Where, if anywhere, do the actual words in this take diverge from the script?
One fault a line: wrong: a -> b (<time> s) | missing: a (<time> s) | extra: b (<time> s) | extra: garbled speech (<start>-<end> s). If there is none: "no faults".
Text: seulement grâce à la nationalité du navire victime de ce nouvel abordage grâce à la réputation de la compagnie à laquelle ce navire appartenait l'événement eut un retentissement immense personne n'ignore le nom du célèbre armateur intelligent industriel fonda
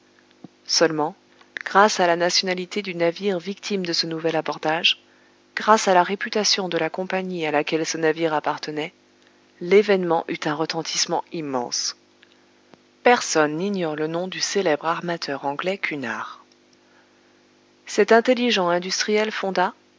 extra: anglais cunard cet (15.4 s)